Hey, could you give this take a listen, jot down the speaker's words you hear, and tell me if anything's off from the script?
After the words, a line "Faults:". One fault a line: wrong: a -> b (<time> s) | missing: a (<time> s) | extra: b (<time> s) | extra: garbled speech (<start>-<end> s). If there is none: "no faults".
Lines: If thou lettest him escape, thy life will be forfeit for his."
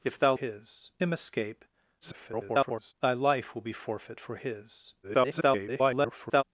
If thou his him escape, [garbled] thy life will be forfeit for his." [garbled]
Faults:
wrong: lettest -> his (0.3 s)
extra: garbled speech (2.0-2.9 s)
extra: garbled speech (5.0-6.4 s)